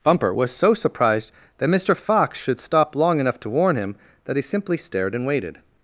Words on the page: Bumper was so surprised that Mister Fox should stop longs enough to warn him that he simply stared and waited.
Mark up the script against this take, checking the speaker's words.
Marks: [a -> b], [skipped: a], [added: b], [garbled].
Bumper was so surprised that Mister Fox should stop [longs -> long] enough to warn him that he simply stared and waited.